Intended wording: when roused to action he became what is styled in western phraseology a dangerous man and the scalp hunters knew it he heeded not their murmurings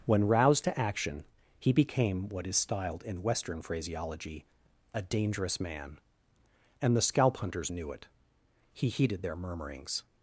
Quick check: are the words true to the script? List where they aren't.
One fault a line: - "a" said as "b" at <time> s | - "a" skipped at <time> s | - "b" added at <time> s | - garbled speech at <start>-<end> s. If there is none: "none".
- "not" skipped at 9.2 s